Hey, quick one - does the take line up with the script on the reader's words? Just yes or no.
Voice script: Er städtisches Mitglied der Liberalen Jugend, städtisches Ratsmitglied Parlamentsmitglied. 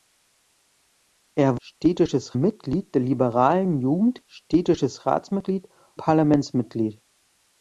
yes